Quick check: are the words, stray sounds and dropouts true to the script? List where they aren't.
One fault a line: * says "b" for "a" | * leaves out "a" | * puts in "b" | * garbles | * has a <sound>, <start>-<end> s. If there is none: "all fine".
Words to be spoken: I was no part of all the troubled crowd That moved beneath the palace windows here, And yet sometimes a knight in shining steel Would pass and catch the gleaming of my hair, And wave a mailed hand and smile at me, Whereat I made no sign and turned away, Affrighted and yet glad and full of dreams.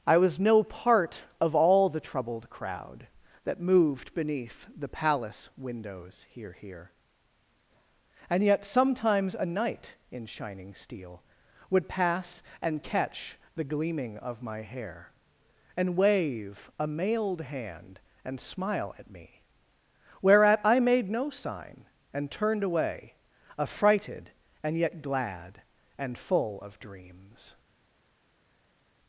* puts in "here"